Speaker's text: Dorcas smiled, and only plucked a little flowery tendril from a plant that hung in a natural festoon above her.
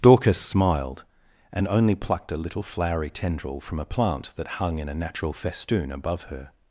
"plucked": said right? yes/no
yes